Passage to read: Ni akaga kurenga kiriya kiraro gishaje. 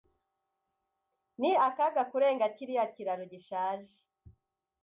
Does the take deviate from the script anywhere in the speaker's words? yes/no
no